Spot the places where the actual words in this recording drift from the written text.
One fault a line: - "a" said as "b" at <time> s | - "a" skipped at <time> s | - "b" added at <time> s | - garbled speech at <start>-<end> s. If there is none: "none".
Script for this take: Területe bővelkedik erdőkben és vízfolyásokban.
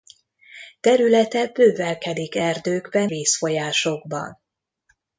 - "és" skipped at 3.1 s